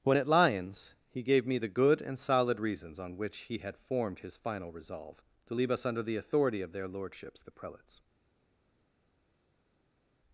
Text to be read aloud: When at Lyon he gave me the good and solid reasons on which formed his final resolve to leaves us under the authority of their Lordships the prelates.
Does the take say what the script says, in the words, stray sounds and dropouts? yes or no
no